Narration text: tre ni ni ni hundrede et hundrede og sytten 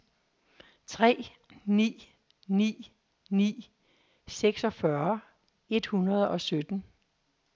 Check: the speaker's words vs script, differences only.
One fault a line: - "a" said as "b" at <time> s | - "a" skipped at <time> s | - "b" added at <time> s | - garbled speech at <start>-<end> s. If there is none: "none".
- "hundrede" said as "seksogfyrre" at 4.3 s